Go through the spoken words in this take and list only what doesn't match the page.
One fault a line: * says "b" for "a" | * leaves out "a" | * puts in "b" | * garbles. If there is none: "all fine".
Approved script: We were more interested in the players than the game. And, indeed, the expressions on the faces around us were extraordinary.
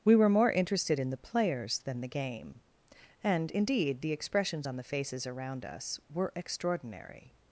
all fine